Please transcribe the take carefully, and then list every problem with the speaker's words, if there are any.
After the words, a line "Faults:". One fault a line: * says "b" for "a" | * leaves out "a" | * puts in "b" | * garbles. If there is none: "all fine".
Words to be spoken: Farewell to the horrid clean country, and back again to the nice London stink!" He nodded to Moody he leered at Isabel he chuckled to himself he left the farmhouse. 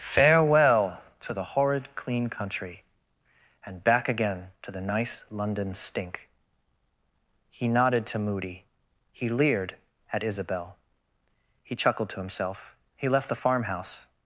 Farewell to the horrid clean country, and back again to the nice London stink!" He nodded to Moody he leered at Isabel he chuckled to himself he left the farmhouse.
Faults:
all fine